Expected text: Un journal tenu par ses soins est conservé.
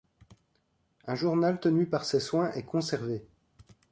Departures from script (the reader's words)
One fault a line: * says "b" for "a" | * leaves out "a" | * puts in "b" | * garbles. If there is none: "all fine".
all fine